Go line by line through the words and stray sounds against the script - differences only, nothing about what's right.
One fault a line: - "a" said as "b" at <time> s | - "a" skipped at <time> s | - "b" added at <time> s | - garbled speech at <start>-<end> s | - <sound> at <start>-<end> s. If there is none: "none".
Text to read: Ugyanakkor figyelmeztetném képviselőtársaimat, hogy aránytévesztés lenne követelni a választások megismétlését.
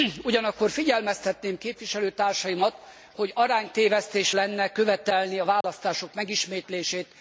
- dropout at 5.6-5.6 s